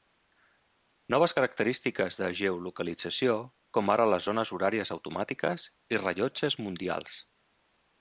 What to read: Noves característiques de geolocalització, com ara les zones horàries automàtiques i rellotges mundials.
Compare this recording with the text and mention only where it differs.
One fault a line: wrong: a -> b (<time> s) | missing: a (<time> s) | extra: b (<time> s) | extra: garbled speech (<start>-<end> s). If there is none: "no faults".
no faults